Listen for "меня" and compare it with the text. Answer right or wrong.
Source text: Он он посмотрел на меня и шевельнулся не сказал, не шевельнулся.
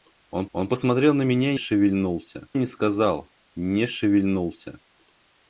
right